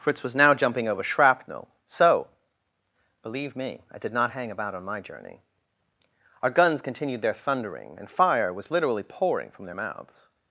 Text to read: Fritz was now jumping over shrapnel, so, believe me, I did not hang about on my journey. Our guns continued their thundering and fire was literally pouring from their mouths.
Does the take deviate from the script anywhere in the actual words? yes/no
no